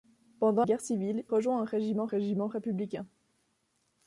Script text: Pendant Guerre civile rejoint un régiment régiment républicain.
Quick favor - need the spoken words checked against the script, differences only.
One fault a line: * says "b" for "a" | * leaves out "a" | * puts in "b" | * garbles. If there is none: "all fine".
all fine